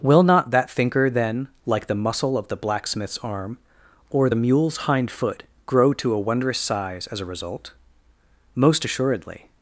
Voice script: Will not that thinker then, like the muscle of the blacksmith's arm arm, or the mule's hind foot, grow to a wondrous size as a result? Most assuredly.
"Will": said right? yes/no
yes